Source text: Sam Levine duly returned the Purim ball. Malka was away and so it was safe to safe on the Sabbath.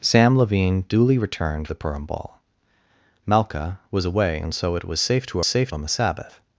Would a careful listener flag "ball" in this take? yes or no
no